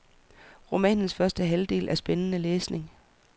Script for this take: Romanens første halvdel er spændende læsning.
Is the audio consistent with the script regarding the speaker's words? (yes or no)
yes